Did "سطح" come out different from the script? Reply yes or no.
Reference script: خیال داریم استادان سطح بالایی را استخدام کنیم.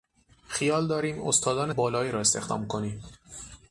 yes